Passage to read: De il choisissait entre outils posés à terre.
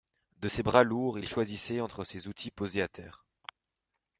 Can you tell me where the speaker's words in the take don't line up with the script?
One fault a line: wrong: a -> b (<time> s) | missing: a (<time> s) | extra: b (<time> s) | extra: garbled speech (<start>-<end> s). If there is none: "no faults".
extra: ses bras lourds (0.5 s)
extra: ses (2.0 s)